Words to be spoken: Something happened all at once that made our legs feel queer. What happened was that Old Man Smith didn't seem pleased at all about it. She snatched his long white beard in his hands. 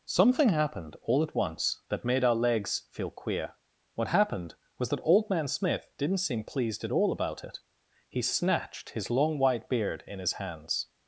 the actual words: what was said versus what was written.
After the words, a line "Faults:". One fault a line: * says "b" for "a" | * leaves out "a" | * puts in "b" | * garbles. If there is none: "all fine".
Something happened all at once that made our legs feel queer. What happened was that Old Man Smith didn't seem pleased at all about it. He snatched his long white beard in his hands.
Faults:
* says "He" for "She"